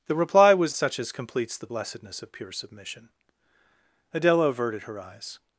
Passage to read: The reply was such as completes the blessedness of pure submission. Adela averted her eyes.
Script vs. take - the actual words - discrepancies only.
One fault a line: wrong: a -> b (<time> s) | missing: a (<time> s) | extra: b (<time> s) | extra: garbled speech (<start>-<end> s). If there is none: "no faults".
no faults